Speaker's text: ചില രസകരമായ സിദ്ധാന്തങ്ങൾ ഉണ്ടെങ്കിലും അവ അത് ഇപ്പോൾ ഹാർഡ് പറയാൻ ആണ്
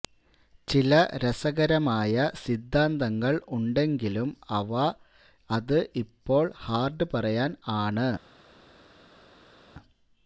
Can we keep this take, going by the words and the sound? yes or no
yes